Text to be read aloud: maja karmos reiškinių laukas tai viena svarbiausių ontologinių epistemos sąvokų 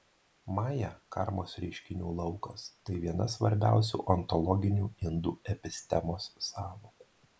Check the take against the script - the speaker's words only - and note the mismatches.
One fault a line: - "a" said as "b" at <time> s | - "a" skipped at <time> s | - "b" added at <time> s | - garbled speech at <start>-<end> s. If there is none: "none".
- "indų" added at 5.1 s